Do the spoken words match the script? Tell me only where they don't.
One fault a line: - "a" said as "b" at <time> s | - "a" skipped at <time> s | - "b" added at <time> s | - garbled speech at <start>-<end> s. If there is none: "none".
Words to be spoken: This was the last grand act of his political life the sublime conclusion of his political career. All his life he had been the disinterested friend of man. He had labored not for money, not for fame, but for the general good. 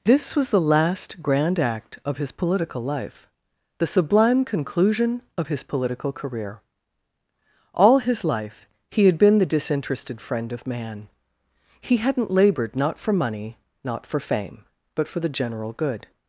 - "had" said as "hadn't" at 12.0 s